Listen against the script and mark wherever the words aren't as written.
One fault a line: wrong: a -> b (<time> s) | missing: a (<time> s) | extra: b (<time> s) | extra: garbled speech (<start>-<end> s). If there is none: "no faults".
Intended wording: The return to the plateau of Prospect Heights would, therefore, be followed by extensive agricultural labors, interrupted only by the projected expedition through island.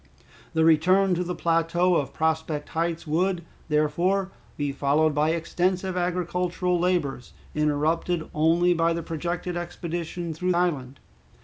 no faults